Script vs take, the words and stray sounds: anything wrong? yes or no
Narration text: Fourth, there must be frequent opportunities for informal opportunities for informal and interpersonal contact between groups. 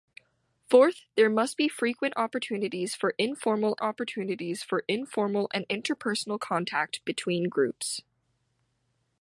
no